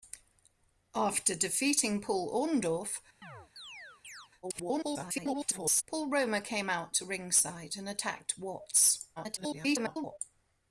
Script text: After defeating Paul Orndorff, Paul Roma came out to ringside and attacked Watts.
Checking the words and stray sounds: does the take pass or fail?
fail